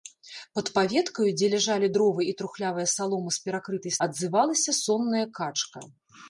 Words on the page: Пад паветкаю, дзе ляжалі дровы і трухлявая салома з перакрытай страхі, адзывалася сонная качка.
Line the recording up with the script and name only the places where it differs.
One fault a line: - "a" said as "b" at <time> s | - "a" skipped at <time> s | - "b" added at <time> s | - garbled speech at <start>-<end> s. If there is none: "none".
- "страхі" skipped at 3.9 s